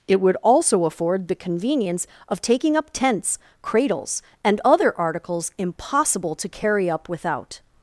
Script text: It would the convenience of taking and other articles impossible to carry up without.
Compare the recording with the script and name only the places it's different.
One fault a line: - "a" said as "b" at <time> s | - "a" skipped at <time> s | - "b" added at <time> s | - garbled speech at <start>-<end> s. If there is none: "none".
- "also afford" added at 0.4 s
- "up tents cradles" added at 2.8 s